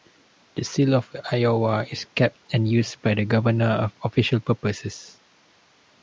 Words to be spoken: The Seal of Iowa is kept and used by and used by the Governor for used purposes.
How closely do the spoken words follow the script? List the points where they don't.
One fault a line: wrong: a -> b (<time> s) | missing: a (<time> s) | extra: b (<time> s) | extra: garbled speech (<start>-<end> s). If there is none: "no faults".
missing: and used by (3.1 s)
wrong: used -> official (4.1 s)